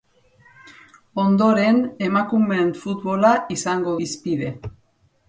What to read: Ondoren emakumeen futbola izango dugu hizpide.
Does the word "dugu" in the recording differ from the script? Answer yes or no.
yes